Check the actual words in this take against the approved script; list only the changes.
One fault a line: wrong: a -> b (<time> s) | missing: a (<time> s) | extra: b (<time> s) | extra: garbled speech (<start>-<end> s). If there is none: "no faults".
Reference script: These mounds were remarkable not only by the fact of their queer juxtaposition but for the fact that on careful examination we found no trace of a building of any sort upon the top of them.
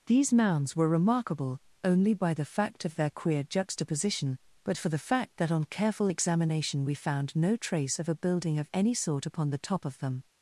missing: not (1.6 s)